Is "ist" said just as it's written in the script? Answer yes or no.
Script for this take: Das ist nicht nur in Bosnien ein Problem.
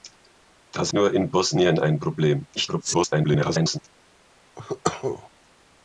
no